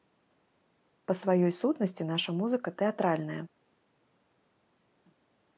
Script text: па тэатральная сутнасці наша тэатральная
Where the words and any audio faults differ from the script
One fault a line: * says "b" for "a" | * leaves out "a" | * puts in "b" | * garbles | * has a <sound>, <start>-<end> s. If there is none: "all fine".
* says "сваёй" for "тэатральная"
* puts in "музыка"